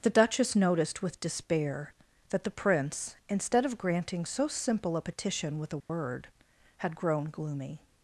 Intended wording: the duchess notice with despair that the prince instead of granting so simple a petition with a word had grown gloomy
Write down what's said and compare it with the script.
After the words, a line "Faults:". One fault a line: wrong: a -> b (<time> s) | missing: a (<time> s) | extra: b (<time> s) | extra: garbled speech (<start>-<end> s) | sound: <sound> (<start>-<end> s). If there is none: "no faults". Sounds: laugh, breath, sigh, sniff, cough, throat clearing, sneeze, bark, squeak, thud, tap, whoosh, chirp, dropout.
the duchess noticed with despair that the prince instead of granting so simple a petition with a word had grown gloomy
Faults:
wrong: notice -> noticed (0.6 s)
sound: dropout (5.8-5.9 s)